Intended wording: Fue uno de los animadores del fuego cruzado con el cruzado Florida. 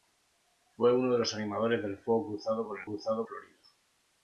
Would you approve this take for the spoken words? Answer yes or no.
yes